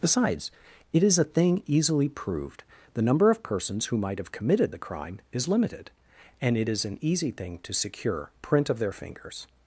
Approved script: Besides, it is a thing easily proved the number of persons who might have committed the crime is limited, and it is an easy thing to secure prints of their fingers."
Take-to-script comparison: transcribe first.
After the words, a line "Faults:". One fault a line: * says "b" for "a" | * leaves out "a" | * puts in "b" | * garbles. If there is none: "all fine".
Besides, it is a thing easily proved the number of persons who might have committed the crime is limited, and it is an easy thing to secure print of their fingers."
Faults:
* says "print" for "prints"